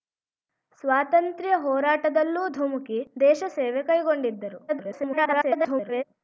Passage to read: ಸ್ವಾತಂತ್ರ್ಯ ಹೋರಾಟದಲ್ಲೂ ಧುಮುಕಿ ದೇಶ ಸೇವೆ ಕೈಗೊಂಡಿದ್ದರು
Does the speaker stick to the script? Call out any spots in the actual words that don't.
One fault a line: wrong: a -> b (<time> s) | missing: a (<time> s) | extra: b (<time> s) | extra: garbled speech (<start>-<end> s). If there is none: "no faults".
extra: garbled speech (4.7-6.0 s)